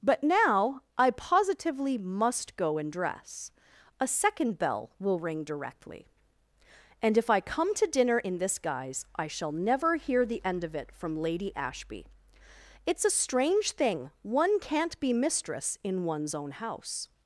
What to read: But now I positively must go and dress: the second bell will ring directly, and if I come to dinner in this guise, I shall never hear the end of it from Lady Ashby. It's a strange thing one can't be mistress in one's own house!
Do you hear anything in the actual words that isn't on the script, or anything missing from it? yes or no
yes